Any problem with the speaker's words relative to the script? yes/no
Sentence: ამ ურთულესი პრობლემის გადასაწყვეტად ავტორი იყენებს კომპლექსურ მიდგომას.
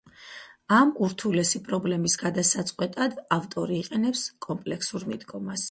no